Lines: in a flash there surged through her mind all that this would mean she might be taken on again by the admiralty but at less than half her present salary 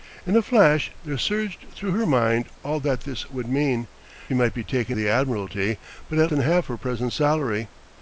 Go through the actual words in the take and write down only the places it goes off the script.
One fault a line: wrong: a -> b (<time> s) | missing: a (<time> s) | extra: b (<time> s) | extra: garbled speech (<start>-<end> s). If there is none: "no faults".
missing: she (3.9 s)
missing: on again by (5.0 s)
missing: less (6.3 s)